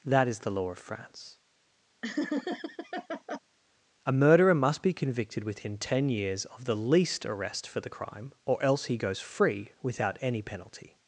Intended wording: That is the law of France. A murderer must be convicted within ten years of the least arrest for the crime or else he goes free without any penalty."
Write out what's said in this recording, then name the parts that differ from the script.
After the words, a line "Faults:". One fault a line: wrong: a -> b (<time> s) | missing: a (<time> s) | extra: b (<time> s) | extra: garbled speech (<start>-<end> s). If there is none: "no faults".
That is the law of France. A murderer must be convicted within ten years of the least arrest for the crime or else he goes free without any penalty."
Faults:
no faults